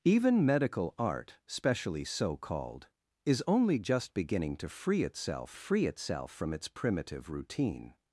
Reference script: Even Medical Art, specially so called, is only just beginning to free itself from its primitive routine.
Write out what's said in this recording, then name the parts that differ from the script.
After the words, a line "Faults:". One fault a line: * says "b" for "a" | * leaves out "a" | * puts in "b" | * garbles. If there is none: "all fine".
Even Medical Art, specially so called, is only just beginning to free itself free itself from its primitive routine.
Faults:
* puts in "free itself"